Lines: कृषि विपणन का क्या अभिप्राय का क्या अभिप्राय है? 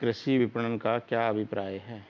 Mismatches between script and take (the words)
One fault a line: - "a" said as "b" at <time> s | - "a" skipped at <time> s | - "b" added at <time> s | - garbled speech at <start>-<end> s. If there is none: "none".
- "का क्या अभिप्राय" skipped at 1.8 s